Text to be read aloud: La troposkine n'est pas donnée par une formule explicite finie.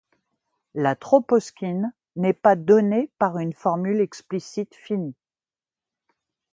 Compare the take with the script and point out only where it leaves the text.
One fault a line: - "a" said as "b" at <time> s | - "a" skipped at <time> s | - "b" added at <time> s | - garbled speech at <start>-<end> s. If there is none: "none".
none